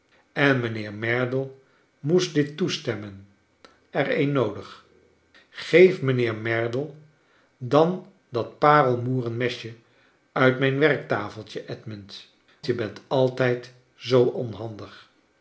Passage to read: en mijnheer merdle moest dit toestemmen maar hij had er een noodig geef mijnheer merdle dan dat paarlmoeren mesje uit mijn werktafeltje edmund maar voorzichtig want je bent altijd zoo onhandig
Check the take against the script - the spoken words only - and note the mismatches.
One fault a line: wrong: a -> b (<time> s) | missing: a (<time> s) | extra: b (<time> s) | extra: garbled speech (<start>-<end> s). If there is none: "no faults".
missing: maar hij had (3.3 s)
missing: maar voorzichtig want (12.3 s)